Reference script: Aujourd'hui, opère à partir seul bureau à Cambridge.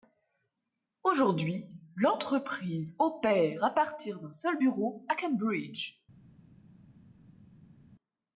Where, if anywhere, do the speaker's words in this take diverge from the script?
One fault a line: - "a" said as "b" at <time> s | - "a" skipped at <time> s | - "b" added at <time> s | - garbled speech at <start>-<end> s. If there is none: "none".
- "l'entreprise" added at 1.9 s
- "d'un" added at 4.2 s